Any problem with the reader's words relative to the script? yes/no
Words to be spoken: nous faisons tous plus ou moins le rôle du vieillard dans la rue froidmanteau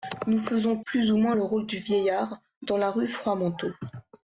yes